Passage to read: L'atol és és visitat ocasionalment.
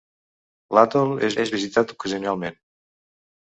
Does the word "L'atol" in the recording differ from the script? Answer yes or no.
no